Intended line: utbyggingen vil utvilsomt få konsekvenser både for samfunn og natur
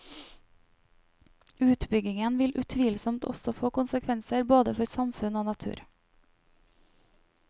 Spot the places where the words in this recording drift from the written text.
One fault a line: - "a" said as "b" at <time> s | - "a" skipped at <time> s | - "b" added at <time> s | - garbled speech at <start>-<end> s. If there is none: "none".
- "også" added at 3.3 s